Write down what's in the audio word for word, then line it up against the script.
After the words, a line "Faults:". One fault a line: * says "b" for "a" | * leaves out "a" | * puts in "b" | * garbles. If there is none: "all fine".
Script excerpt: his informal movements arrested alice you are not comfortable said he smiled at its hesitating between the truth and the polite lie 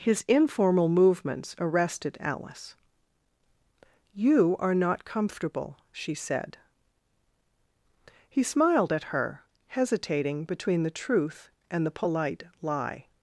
his informal movements arrested alice you are not comfortable she said he smiled at her hesitating between the truth and the polite lie
Faults:
* puts in "she"
* says "her" for "its"